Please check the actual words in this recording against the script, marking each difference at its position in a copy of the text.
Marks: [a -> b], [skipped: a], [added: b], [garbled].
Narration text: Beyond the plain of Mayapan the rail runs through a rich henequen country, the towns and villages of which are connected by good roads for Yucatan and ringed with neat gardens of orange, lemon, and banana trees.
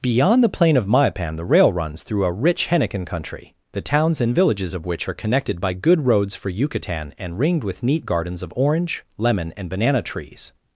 Beyond the plain of Mayapan the rail runs through a rich henequen country, the towns and villages of which are connected by good roads for Yucatan and ringed with neat gardens of orange, lemon, and banana trees.